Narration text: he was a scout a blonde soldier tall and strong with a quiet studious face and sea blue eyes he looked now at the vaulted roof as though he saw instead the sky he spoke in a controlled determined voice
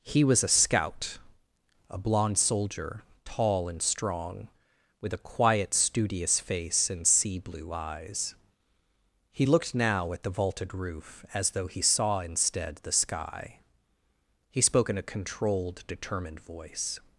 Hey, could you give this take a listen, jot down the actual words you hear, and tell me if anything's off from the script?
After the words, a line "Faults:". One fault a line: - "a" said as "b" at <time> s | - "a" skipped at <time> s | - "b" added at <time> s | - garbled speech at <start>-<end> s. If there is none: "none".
he was a scout a blonde soldier tall and strong with a quiet studious face and sea blue eyes he looked now at the vaulted roof as though he saw instead the sky he spoke in a controlled determined voice
Faults:
none